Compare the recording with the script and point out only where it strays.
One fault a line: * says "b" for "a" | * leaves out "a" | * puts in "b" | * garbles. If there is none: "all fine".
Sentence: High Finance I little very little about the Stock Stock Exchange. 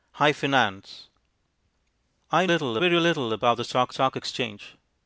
all fine